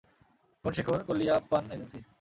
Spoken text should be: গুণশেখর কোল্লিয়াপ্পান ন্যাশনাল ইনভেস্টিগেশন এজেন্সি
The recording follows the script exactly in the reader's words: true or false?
false